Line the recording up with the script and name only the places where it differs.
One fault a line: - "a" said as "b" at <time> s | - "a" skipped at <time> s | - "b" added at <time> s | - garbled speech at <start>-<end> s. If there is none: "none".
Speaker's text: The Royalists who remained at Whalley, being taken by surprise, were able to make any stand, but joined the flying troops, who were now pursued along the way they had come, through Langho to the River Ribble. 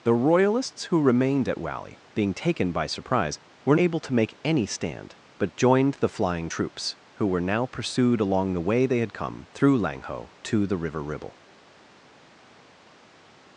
none